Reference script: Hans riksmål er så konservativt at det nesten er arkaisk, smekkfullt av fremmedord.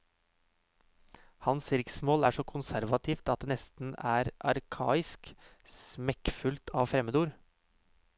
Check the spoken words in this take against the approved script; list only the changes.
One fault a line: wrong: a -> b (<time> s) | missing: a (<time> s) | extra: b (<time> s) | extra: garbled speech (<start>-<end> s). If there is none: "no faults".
no faults